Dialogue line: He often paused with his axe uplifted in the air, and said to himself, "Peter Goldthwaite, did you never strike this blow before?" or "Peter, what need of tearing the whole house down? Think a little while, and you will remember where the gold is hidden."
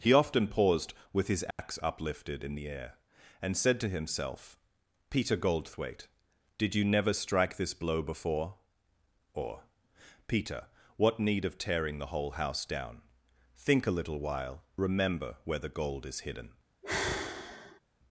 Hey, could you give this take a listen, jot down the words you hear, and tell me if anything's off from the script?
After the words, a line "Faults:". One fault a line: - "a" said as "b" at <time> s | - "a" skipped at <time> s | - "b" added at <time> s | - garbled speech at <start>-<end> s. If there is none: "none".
He often paused with his axe uplifted in the air, and said to himself, "Peter Goldthwaite, did you never strike this blow before?" or "Peter, what need of tearing the whole house down? Think a little while, remember where the gold is hidden."
Faults:
- "and you will" skipped at 14.6 s